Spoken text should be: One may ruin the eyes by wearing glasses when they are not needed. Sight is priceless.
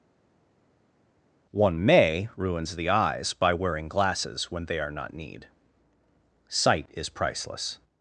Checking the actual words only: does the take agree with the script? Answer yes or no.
no